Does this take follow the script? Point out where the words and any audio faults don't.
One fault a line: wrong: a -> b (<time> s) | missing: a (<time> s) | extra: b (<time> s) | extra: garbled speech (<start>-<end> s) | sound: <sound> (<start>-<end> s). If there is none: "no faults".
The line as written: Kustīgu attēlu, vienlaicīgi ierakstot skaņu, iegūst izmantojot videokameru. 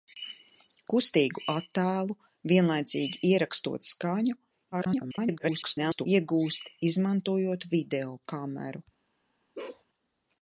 extra: garbled speech (4.7-6.1 s)
sound: bark (9.5-9.8 s)